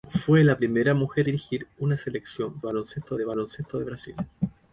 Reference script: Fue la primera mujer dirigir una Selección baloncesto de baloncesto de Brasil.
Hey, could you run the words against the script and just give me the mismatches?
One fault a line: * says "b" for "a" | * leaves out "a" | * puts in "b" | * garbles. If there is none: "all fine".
all fine